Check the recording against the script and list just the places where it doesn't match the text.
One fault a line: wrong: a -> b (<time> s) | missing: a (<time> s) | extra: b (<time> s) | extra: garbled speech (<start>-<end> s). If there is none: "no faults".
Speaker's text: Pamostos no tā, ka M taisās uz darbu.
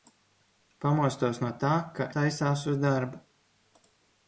missing: M (2.1 s)